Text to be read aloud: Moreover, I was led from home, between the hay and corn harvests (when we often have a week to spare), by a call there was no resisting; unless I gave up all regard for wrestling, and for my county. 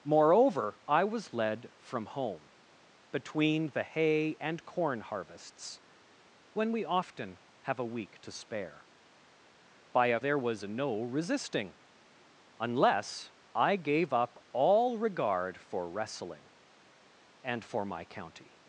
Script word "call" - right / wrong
wrong